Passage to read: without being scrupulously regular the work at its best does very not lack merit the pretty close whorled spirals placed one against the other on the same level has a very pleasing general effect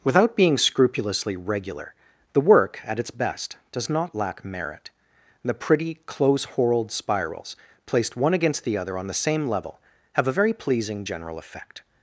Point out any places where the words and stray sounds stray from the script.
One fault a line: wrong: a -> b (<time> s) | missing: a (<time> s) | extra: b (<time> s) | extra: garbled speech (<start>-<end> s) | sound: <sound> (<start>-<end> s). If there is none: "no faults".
missing: very (3.9 s)
wrong: has -> have (10.1 s)